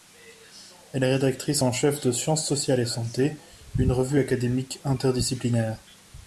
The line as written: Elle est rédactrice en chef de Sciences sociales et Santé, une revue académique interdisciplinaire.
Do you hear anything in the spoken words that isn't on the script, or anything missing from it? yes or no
no